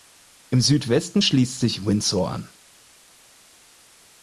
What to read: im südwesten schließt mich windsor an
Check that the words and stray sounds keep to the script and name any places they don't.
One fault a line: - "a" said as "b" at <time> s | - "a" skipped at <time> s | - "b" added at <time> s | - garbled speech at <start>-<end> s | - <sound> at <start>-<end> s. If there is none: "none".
- "mich" said as "sich" at 1.6 s